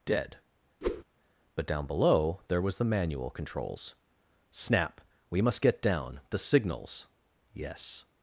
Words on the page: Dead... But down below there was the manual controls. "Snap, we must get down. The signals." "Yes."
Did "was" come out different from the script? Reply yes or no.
no